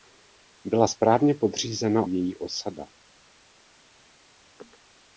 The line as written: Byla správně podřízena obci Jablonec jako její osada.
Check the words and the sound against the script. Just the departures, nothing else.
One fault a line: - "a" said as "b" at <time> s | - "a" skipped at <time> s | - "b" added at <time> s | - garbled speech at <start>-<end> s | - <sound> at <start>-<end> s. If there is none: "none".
- "obci Jablonec jako" skipped at 2.1 s